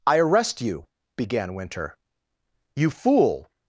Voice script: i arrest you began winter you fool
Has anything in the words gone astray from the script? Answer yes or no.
no